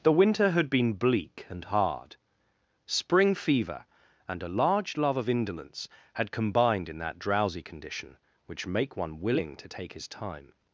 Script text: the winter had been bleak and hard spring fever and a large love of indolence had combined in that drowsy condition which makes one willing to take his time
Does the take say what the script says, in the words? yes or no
no